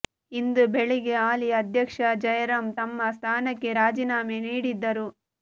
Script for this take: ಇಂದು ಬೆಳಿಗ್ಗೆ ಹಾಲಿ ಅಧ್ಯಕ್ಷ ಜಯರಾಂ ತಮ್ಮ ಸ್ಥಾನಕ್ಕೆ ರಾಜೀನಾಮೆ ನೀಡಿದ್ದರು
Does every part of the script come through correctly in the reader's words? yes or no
yes